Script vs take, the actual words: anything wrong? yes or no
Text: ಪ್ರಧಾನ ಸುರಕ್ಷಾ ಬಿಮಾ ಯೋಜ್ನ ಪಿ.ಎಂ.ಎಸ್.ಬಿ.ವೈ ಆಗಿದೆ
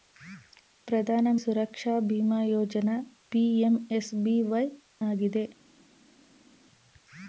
no